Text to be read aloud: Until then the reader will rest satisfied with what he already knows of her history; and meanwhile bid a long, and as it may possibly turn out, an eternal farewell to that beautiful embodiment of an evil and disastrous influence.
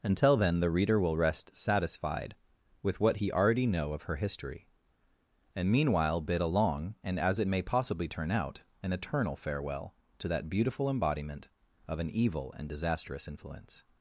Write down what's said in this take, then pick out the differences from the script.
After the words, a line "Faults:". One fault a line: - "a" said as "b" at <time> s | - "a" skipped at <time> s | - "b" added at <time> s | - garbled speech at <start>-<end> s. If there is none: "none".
Until then the reader will rest satisfied with what he already know of her history; and meanwhile bid a long, and as it may possibly turn out, an eternal farewell to that beautiful embodiment of an evil and disastrous influence.
Faults:
- "knows" said as "know" at 3.7 s